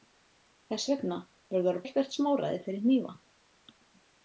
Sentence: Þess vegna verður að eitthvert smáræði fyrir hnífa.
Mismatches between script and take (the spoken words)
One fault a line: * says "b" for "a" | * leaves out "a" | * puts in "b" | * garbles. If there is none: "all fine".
all fine